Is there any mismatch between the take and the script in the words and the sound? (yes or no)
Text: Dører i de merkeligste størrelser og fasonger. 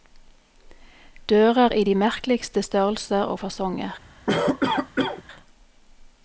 yes